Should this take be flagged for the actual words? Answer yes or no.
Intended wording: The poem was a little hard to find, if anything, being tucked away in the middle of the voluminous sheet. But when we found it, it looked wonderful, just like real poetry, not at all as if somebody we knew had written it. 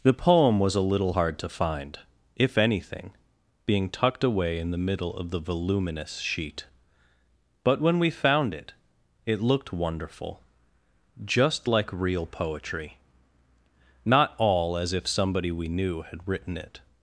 yes